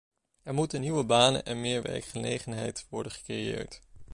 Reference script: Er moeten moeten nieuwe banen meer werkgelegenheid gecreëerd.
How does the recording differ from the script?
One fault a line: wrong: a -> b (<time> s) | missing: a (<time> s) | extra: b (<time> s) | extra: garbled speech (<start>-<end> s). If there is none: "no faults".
missing: moeten (0.8 s)
extra: en (1.4 s)
extra: worden (2.9 s)